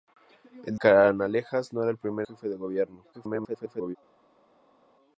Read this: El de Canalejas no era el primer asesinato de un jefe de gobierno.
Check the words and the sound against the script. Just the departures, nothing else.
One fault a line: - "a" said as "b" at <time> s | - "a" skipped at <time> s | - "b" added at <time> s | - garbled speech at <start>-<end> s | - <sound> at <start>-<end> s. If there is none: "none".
- "de" skipped at 0.8 s
- "asesinato de un" skipped at 2.3 s
- garbled speech at 3.1-4.0 s